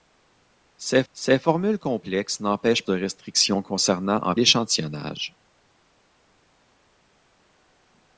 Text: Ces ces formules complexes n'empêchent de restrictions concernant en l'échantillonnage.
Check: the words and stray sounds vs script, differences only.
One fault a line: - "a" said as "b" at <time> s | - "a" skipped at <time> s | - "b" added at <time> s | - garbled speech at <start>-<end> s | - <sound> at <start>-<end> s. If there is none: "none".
none